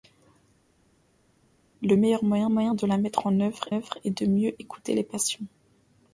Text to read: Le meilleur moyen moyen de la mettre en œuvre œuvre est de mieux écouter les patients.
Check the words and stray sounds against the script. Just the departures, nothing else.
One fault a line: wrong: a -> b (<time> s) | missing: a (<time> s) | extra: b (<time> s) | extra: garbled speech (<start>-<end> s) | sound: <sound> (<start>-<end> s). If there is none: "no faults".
no faults